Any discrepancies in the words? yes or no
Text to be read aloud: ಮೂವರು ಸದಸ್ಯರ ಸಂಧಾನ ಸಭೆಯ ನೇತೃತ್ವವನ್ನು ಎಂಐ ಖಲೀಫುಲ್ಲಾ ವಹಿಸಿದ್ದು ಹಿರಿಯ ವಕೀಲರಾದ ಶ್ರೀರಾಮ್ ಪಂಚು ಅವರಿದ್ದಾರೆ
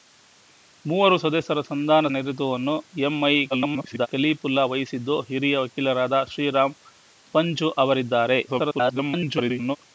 yes